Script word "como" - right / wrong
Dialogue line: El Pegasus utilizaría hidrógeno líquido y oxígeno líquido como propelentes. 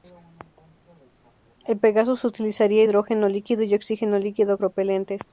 wrong